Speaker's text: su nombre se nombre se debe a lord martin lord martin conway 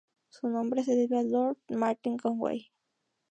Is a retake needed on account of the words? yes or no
yes